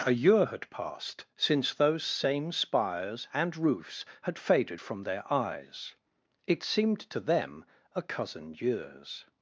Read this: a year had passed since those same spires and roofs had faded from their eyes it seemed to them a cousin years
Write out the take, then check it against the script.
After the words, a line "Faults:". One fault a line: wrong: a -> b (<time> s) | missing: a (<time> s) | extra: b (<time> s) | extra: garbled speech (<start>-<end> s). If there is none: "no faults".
a year had passed since those same spires and roofs had faded from their eyes it seemed to them a cousin years
Faults:
no faults